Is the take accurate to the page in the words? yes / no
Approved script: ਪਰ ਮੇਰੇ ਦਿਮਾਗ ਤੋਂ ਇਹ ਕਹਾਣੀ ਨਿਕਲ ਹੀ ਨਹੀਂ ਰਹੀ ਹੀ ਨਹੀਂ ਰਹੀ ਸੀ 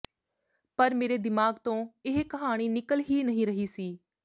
no